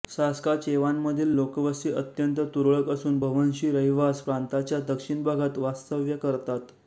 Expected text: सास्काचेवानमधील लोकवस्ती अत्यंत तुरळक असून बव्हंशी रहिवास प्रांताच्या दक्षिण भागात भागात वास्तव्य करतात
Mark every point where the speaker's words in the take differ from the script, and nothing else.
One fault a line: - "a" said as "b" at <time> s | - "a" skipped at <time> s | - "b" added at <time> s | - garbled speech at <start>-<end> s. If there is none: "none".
- "भागात" skipped at 5.6 s